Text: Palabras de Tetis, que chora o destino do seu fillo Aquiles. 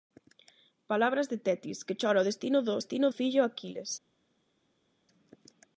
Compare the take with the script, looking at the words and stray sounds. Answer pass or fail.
fail